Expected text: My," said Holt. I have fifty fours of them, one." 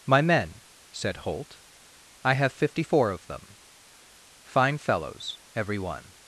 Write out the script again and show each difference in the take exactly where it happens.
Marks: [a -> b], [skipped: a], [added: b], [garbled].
My," [added: men] said Holt. I have fifty [fours -> four] of them, [added: fine fellows every] one."